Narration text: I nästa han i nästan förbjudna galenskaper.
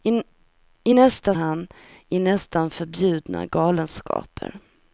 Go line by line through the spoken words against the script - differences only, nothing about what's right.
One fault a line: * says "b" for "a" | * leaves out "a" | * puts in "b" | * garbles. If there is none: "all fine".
all fine